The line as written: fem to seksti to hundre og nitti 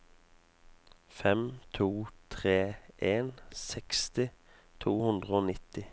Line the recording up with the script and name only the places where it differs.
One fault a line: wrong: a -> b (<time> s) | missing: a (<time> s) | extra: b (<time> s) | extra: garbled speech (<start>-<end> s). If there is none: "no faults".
extra: tre en (2.3 s)